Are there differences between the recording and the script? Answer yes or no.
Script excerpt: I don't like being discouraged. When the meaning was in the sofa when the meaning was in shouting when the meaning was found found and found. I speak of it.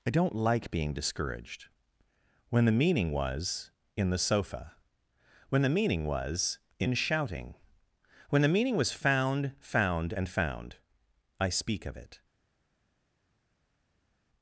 no